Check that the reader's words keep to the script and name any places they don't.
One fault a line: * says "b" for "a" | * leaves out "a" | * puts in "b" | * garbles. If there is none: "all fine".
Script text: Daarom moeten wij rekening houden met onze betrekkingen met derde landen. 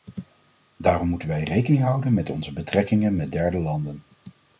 all fine